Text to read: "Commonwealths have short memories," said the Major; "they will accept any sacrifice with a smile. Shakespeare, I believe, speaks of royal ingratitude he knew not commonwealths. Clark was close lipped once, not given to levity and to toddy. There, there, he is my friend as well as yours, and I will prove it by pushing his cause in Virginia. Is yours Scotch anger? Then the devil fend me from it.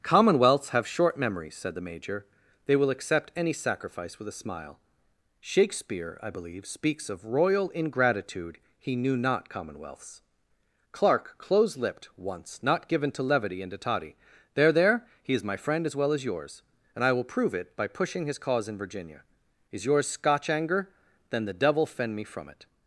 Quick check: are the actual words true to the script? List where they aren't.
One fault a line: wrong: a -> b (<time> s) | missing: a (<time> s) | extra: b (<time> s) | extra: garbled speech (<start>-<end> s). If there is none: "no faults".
missing: was (11.3 s)